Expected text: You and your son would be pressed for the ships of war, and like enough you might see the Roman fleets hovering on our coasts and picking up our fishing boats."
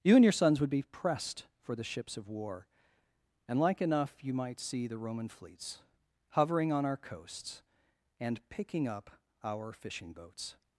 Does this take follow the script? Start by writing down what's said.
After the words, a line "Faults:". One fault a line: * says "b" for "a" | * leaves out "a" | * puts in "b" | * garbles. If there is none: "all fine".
You and your sons would be pressed for the ships of war, and like enough you might see the Roman fleets hovering on our coasts and picking up our fishing boats."
Faults:
* says "sons" for "son"